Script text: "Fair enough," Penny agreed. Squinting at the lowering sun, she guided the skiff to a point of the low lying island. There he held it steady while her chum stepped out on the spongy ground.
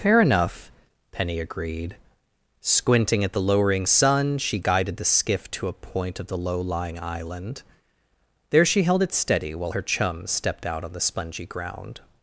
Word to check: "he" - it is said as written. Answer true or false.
false